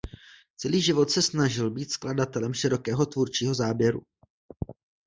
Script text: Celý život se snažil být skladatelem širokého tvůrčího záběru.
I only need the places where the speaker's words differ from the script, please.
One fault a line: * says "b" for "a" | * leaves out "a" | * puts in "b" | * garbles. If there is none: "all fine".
all fine